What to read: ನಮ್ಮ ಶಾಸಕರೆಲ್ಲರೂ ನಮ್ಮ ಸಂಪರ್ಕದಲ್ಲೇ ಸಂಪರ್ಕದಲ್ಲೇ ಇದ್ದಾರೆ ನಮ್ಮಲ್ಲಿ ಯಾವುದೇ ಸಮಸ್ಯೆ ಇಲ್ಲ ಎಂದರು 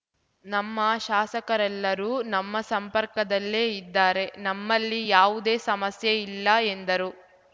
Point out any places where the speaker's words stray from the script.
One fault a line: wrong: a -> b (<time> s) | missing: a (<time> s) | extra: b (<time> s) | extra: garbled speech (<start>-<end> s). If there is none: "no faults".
missing: ಸಂಪರ್ಕದಲ್ಲೇ (3.6 s)